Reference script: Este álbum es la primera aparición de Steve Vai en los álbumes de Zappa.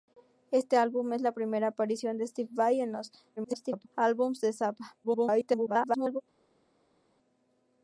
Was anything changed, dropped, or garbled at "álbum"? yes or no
no